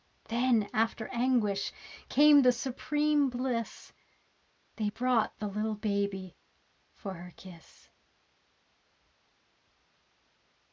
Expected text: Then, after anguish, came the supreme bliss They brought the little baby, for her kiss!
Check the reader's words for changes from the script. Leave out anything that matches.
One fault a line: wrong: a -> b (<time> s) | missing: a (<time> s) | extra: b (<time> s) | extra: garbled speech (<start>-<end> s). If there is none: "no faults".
no faults